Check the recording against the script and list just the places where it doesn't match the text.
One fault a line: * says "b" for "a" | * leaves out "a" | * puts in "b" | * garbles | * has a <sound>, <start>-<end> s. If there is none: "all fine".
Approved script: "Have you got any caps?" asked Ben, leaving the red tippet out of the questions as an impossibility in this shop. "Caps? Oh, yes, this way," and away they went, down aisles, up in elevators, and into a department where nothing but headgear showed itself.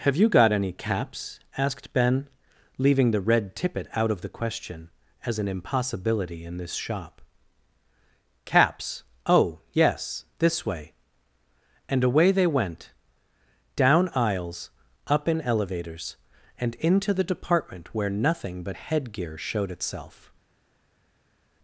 * says "question" for "questions"
* says "the" for "a"